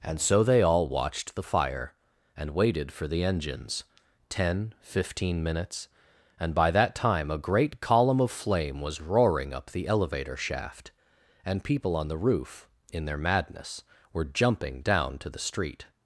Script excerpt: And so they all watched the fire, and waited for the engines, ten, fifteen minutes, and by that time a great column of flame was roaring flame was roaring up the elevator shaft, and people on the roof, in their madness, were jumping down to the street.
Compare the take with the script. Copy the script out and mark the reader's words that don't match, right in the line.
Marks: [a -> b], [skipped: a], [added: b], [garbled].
And so they all watched the fire, and waited for the engines, ten, fifteen minutes, and by that time a great column of flame was roaring [skipped: flame was roaring] up the elevator shaft, and people on the roof, in their madness, were jumping down to the street.